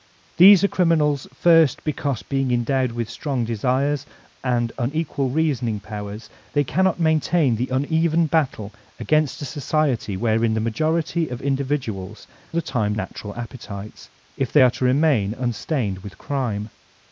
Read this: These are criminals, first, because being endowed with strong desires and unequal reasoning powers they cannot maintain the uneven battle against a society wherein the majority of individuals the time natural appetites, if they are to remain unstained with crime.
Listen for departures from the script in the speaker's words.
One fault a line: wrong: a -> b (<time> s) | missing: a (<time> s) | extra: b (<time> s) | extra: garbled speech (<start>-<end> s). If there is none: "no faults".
no faults